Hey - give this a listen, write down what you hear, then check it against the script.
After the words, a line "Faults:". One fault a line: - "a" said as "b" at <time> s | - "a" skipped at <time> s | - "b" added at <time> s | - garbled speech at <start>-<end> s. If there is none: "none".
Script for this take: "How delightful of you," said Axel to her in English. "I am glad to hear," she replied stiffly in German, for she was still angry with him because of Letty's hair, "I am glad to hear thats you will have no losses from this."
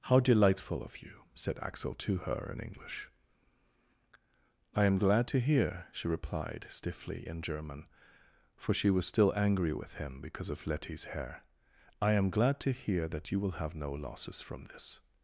"How delightful of you," said Axel to her in English. "I am glad to hear," she replied stiffly in German, for she was still angry with him because of Letty's hair, "I am glad to hear that you will have no losses from this."
Faults:
- "thats" said as "that" at 13.1 s